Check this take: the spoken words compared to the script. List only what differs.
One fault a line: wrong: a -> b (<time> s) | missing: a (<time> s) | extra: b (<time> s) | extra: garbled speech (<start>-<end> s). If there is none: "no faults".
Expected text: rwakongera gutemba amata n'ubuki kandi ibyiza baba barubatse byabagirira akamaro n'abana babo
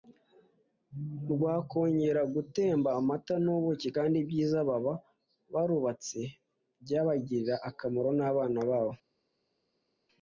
no faults